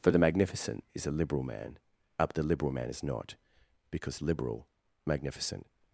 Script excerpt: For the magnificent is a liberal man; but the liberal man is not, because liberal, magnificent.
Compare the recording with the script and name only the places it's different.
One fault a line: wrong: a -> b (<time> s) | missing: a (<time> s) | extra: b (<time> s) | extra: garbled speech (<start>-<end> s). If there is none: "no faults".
no faults